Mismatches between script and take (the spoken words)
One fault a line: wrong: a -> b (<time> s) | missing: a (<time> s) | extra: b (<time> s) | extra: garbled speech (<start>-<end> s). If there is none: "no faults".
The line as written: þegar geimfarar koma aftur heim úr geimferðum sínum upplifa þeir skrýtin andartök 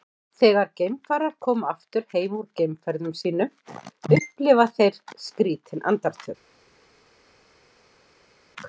no faults